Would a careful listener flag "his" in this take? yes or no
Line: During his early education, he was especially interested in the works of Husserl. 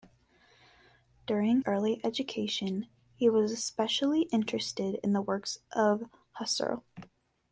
yes